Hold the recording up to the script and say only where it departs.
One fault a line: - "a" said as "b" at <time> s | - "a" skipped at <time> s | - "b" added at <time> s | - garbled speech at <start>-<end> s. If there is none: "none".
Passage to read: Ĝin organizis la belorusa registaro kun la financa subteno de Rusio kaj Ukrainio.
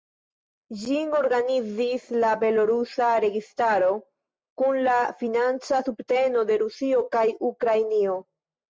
none